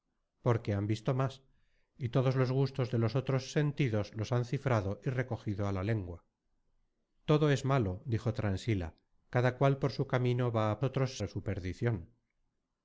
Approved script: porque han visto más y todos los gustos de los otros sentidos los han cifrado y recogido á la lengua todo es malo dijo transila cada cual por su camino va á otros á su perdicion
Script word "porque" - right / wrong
right